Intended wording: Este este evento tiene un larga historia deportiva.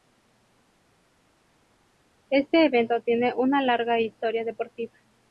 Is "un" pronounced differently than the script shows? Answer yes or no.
yes